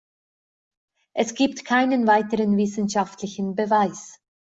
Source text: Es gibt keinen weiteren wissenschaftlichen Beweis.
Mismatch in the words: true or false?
false